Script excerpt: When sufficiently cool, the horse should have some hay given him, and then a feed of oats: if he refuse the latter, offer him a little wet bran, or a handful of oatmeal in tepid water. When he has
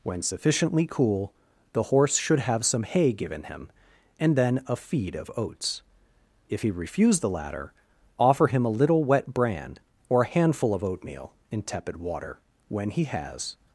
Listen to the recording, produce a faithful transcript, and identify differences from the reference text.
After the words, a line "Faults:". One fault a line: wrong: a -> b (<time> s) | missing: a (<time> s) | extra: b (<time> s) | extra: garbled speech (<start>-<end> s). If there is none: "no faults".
When sufficiently cool, the horse should have some hay given him, and then a feed of oats: if he refuse the latter, offer him a little wet bran, or a handful of oatmeal in tepid water. When he has
Faults:
no faults